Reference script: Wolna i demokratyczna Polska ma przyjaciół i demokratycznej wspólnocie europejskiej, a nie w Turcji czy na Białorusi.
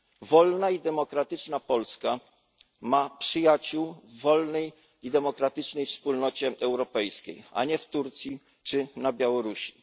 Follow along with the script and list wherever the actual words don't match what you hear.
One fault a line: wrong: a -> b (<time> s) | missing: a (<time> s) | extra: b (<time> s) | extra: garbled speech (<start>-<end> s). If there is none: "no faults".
extra: w wolnej (4.0 s)